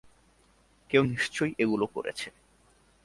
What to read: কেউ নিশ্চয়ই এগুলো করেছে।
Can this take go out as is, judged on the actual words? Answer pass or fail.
pass